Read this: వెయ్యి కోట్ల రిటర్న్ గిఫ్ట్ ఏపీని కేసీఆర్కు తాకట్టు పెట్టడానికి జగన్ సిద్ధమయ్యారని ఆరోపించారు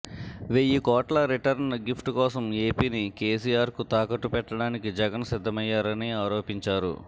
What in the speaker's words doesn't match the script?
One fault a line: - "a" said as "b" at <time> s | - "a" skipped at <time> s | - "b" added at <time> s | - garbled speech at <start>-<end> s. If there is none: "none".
- "కోసం" added at 2.1 s